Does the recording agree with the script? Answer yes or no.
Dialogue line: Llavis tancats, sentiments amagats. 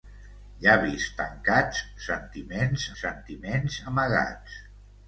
no